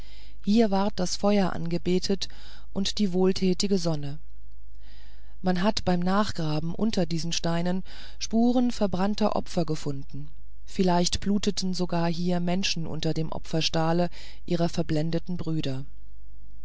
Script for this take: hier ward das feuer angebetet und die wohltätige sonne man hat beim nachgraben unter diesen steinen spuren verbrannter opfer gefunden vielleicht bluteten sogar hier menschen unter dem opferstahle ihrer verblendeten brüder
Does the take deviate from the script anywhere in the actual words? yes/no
no